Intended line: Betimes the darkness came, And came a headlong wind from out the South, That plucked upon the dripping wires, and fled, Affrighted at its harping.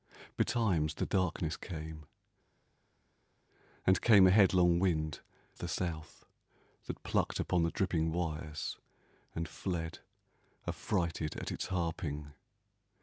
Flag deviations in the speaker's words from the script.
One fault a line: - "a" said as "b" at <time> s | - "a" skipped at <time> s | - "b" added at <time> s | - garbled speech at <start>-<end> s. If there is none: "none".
- "from out" skipped at 5.2 s